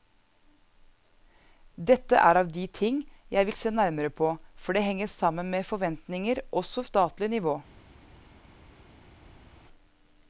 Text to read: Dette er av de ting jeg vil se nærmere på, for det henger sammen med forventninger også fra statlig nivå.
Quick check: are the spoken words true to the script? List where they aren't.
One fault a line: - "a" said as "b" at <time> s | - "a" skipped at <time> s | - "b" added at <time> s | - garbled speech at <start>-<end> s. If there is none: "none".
- "fra" skipped at 6.8 s